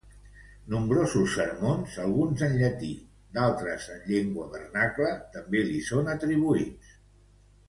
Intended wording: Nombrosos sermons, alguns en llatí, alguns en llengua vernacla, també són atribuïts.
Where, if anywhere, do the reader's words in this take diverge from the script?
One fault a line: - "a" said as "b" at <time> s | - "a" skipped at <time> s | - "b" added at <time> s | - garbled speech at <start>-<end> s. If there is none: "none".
- "alguns" said as "d'altres" at 3.4 s
- "li" added at 5.7 s